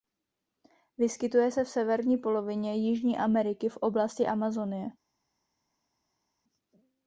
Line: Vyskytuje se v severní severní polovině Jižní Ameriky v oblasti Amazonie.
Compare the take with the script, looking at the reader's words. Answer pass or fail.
fail